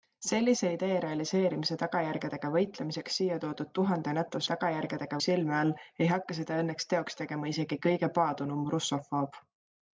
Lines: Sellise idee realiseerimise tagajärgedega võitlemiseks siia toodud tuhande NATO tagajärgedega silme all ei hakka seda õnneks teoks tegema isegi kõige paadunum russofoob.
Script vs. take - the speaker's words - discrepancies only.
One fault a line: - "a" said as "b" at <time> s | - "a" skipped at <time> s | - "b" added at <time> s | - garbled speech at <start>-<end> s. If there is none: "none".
none